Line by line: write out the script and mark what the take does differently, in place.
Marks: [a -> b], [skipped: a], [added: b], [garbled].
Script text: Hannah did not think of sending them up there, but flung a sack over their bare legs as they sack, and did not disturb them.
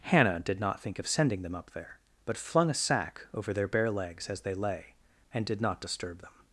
Hannah did not think of sending them up there, but flung a sack over their bare legs as they [sack, -> lay] and did not disturb them.